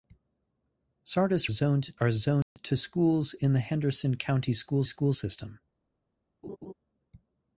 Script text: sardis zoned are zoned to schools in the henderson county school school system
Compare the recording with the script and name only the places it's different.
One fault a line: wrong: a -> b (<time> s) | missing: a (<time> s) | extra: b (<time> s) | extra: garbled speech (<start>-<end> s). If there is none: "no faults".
no faults